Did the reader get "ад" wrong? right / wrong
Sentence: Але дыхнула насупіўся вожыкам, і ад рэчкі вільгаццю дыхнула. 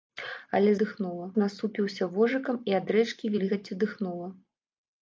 right